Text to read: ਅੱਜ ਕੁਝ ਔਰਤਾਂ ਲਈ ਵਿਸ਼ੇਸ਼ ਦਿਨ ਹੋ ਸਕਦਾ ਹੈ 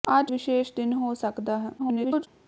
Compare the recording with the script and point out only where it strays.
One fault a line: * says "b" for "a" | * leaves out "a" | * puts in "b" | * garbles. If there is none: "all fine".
* leaves out "ਕੁਝ ਔਰਤਾਂ ਲਈ"
* garbles